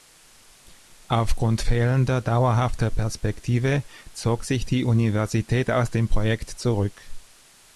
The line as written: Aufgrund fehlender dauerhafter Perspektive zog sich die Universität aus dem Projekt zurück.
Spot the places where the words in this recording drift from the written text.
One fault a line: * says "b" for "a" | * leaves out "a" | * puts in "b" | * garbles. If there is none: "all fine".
all fine